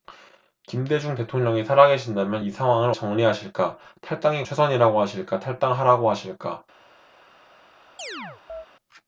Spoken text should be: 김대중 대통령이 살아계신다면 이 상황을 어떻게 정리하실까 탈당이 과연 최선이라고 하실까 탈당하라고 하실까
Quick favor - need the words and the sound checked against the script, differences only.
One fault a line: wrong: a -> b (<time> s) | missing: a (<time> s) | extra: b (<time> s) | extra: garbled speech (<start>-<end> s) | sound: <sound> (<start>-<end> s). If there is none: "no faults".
missing: 어떻게 (2.9 s)
missing: 과연 (4.5 s)
sound: chirp (8.0-8.7 s)